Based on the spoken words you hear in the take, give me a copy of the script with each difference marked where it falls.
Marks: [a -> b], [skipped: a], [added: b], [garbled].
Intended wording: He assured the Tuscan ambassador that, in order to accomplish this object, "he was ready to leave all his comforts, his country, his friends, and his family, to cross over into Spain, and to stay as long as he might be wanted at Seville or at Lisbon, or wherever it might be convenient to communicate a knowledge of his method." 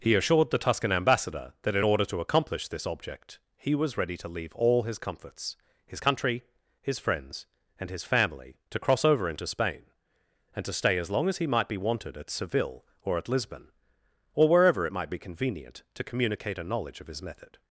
He assured the Tuscan ambassador that, in order to accomplish this object, "he was ready to leave all his comforts, his country, his friends, and his family, to cross over into Spain, and to stay as long as he might be wanted at Seville or at Lisbon, or wherever it might be convenient to communicate a knowledge of his method."